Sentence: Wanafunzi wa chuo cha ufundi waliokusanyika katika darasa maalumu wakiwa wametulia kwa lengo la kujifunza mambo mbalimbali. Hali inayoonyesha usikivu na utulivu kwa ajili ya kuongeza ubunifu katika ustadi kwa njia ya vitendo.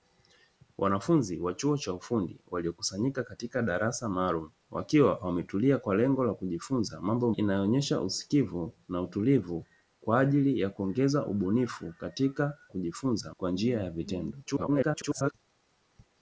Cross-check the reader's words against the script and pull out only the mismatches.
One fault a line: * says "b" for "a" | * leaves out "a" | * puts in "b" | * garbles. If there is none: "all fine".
* leaves out "mbalimbali Hali"
* says "kujifunza" for "ustadi"
* garbles